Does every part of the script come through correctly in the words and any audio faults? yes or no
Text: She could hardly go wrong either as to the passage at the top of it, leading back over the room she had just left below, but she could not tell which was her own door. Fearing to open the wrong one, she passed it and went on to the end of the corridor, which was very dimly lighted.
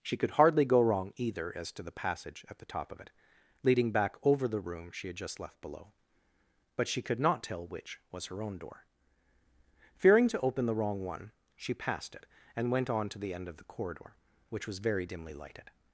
yes